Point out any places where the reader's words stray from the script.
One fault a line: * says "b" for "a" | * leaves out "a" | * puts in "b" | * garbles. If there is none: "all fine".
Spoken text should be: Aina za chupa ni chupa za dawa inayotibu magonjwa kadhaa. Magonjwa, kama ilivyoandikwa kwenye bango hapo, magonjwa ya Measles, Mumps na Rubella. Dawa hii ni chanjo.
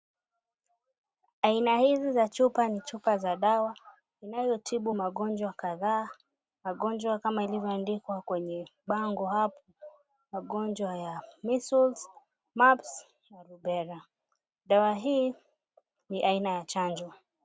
* puts in "hizi"
* puts in "aina ya"